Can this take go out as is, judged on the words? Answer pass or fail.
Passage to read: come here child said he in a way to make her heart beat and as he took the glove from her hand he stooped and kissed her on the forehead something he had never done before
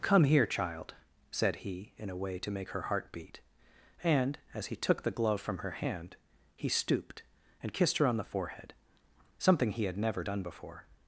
pass